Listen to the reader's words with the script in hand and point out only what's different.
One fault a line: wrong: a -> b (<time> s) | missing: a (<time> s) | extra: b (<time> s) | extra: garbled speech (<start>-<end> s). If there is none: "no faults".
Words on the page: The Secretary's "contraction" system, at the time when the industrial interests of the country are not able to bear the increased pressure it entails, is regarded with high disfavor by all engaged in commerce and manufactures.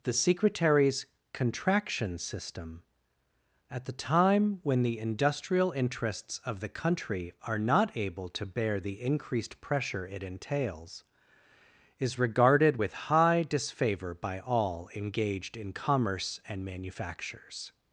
no faults